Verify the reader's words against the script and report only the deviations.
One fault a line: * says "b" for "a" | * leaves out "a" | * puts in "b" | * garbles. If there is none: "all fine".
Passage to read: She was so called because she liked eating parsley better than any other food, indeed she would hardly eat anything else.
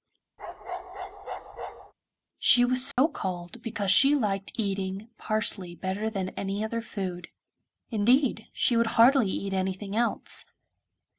all fine